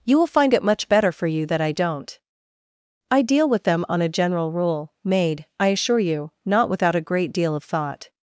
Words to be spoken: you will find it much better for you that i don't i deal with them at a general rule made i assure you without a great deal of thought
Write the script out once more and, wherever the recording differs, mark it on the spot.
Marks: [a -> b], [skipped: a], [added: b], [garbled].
you will find it much better for you that i don't i deal with them [at -> on] a general rule made i assure you [added: not] without a great deal of thought